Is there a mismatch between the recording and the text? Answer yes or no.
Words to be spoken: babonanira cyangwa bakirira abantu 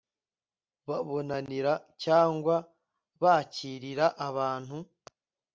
no